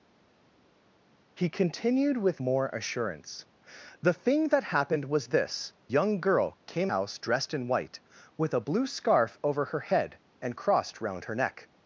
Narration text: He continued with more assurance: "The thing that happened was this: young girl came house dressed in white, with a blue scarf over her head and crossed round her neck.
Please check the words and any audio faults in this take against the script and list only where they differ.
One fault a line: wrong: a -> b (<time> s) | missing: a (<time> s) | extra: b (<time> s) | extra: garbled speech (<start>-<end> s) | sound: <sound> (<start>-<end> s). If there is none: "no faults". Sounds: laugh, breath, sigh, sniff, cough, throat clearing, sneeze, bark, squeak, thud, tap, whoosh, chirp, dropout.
no faults